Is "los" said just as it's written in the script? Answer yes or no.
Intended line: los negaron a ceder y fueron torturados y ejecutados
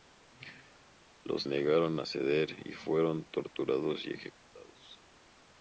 yes